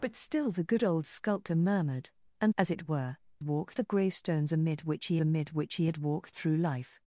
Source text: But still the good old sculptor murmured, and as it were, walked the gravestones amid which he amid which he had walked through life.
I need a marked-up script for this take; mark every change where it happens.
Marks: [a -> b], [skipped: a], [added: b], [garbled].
But still the good old sculptor murmured, and as it were, walked the gravestones amid which he amid which he had walked through life.